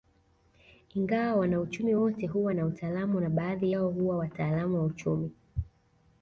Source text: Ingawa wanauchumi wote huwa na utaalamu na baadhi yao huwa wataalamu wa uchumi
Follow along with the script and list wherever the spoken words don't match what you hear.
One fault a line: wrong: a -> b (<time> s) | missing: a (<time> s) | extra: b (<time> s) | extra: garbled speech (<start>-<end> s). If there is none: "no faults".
no faults